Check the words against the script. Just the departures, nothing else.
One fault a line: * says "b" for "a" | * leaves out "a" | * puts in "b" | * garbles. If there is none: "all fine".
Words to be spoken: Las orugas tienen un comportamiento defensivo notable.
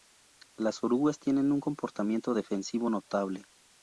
all fine